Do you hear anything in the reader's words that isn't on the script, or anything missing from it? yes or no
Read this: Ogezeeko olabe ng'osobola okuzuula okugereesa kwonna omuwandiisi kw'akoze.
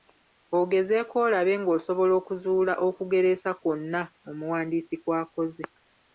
no